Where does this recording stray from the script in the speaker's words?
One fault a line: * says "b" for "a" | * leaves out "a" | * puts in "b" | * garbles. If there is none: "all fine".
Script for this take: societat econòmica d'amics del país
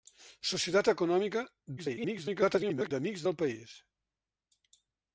* garbles